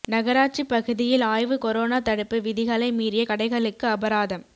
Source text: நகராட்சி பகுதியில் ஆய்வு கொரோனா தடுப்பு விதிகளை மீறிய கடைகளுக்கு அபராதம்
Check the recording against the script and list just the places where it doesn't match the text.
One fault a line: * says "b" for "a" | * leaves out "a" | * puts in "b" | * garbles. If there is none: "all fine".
all fine